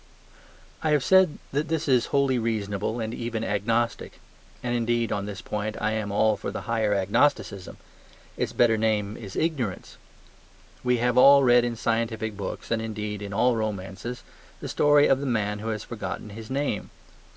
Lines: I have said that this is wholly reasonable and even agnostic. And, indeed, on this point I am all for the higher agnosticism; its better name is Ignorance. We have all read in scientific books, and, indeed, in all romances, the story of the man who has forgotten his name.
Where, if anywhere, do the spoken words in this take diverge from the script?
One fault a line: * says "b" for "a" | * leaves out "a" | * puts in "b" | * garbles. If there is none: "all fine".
all fine